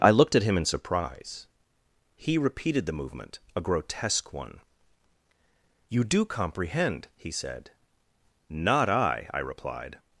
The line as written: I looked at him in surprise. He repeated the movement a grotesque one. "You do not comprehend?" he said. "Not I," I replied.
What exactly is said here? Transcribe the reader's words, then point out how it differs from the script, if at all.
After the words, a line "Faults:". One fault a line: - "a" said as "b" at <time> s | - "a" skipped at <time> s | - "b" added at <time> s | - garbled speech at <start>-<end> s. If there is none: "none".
I looked at him in surprise. He repeated the movement a grotesque one. "You do comprehend?" he said. "Not I," I replied.
Faults:
- "not" skipped at 6.2 s